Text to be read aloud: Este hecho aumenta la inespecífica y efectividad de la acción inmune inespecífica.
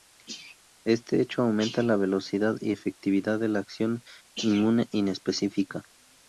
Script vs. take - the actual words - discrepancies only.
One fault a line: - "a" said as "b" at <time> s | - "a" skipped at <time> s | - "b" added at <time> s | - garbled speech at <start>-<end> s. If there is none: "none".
- "inespecífica" said as "velocidad" at 1.9 s